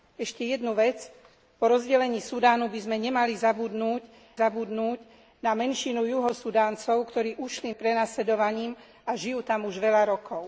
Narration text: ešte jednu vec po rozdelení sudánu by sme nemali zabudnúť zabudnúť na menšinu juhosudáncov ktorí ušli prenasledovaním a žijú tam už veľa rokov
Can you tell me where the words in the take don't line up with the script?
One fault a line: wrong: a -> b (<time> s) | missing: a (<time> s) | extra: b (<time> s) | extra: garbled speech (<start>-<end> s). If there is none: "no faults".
no faults